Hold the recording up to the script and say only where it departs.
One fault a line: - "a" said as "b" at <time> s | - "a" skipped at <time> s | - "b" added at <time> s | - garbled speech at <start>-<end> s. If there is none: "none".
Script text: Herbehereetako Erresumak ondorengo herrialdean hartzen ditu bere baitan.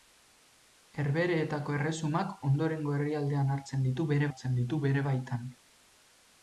- "hartzen ditu bere" added at 4.3 s